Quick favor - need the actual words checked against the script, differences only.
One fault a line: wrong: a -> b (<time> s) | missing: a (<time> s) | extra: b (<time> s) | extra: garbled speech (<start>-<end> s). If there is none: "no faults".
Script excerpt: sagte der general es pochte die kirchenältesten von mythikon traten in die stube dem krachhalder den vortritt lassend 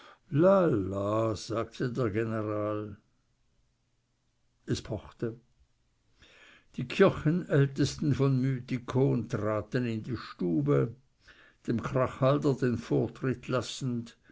no faults